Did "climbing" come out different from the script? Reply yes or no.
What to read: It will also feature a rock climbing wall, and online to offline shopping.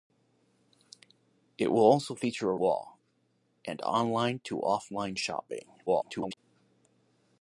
yes